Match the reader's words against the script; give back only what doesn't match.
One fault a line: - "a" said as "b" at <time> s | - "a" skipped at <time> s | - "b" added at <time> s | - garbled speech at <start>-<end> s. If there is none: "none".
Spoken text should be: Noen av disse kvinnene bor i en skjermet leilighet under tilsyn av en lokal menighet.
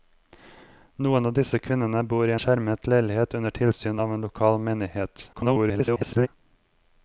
- "en" skipped at 2.4 s
- garbled speech at 5.3-6.3 s